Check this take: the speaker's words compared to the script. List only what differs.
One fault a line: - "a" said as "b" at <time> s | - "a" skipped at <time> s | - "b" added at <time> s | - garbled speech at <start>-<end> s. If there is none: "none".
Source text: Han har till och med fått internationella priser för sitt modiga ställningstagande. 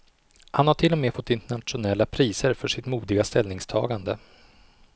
none